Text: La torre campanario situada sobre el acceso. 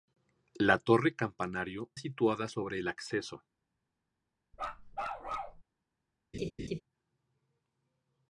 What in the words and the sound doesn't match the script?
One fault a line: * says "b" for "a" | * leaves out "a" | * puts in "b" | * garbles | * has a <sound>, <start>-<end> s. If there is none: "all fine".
* has a bark, 4.5-5.6 s
* has a laugh, 6.3-6.8 s